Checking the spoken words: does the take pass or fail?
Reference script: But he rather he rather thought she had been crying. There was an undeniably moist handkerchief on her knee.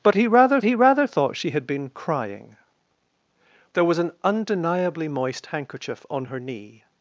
pass